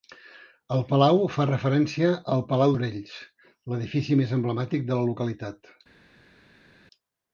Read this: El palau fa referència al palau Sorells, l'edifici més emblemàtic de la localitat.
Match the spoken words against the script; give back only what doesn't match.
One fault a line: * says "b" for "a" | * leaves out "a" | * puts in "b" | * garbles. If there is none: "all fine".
all fine